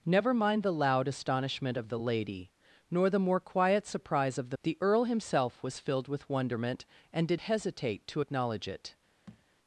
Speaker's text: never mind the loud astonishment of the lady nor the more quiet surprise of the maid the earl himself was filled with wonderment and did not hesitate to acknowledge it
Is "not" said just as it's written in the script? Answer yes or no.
no